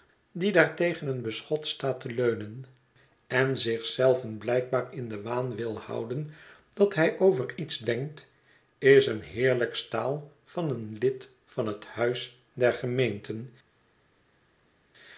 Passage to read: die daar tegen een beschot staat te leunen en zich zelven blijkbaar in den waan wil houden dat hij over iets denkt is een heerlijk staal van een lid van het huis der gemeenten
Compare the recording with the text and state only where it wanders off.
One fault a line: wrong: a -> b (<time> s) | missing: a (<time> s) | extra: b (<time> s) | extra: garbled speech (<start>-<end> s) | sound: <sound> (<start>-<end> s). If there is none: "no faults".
no faults